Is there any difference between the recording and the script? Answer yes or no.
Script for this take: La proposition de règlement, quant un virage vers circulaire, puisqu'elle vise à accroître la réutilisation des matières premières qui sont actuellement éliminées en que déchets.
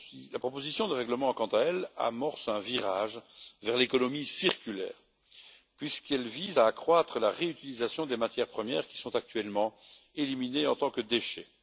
yes